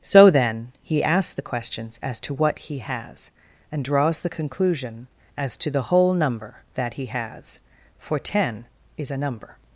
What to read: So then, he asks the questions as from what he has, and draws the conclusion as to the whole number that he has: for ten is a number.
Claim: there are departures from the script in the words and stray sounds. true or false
true